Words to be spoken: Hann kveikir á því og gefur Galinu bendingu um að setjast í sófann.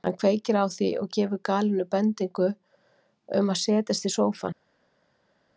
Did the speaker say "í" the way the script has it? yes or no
yes